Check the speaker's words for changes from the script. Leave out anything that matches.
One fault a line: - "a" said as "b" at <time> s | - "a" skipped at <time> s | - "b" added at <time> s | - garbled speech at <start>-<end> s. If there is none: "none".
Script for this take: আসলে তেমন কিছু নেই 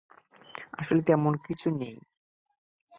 none